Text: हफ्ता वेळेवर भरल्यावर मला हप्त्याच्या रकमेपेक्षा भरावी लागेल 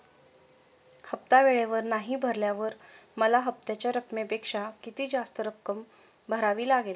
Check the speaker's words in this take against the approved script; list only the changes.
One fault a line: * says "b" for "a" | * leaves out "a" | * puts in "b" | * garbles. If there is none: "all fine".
* puts in "नाही"
* puts in "किती जास्त रक्कम"